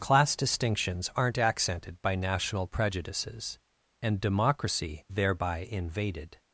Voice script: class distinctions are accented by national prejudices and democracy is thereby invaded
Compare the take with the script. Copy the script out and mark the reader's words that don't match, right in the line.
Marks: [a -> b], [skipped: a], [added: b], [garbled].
class distinctions [are -> aren't] accented by national prejudices and democracy [skipped: is] thereby invaded